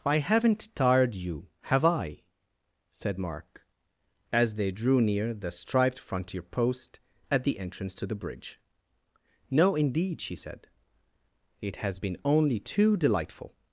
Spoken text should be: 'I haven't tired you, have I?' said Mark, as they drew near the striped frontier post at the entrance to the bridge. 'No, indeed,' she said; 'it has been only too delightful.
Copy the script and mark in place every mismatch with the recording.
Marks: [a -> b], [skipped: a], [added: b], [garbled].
'I haven't tired you, have I?' said Mark, as they drew near the striped frontier post at the entrance to the bridge. 'No, indeed,' she said; 'it has been only too delightful.